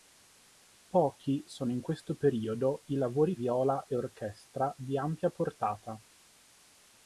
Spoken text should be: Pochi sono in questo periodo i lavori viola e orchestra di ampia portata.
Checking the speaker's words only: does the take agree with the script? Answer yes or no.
yes